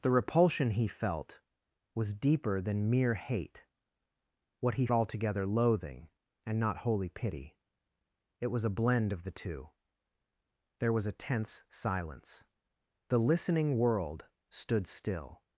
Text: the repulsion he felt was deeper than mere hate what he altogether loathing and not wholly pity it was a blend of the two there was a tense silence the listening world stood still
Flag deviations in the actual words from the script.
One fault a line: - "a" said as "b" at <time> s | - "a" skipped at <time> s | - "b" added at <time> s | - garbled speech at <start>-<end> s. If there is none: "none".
none